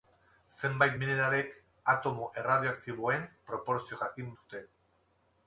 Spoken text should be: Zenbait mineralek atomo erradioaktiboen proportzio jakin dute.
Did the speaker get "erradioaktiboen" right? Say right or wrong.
right